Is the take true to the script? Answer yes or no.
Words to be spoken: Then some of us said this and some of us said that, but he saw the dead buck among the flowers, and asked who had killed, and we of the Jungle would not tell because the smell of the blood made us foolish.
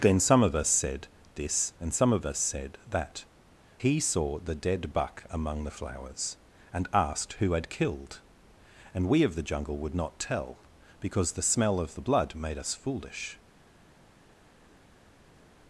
no